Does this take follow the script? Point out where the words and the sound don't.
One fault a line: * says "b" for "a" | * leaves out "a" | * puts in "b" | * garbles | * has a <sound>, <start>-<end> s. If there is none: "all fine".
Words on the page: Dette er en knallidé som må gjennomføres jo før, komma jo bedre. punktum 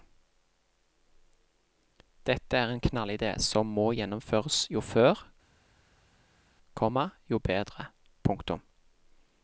all fine